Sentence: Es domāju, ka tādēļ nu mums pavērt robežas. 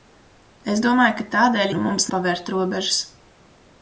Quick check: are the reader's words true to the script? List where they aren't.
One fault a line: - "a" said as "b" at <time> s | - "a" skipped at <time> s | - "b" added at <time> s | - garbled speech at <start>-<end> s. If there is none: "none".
none